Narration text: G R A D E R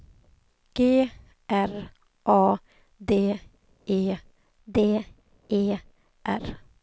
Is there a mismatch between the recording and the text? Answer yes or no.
yes